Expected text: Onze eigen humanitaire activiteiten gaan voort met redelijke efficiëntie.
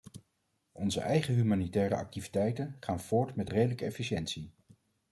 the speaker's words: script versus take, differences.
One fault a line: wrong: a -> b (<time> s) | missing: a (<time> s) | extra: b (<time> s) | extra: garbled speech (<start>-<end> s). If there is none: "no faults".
no faults